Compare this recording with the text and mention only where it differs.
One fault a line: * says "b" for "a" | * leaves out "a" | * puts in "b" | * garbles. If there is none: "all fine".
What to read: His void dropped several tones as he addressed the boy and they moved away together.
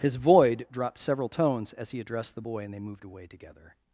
all fine